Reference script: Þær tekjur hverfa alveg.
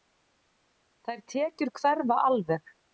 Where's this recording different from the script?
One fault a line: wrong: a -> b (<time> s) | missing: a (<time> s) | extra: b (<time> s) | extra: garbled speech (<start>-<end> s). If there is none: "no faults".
no faults